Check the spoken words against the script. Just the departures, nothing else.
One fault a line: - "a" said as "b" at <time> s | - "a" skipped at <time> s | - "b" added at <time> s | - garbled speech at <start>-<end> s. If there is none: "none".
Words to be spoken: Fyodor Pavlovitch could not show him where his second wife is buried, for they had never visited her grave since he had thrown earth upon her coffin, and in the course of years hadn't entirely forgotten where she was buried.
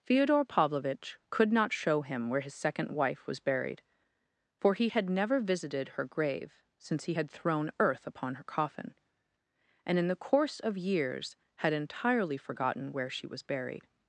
- "is" said as "was" at 3.3 s
- "they" said as "he" at 4.7 s
- "hadn't" said as "had" at 11.6 s